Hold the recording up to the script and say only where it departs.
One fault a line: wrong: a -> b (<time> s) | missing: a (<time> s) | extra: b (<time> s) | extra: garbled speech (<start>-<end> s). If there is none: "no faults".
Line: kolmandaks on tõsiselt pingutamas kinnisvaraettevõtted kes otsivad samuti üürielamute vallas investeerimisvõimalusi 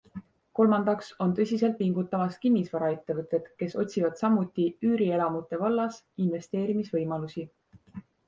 no faults